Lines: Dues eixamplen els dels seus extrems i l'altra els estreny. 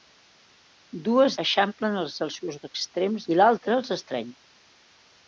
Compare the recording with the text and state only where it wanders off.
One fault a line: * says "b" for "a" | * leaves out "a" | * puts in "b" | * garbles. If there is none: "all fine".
all fine